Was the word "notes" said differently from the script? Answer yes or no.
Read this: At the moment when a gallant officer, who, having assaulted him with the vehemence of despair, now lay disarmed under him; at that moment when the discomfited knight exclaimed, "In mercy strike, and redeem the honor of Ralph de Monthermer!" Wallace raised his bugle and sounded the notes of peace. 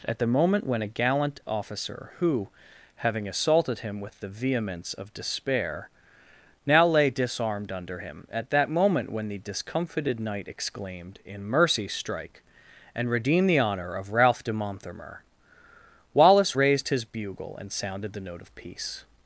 yes